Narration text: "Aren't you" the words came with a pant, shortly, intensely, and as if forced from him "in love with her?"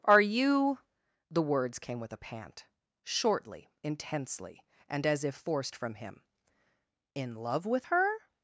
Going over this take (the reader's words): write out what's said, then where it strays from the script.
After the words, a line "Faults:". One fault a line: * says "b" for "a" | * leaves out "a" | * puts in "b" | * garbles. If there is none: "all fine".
"Are you" the words came with a pant, shortly, intensely, and as if forced from him "in love with her?"
Faults:
* says "Are" for "Aren't"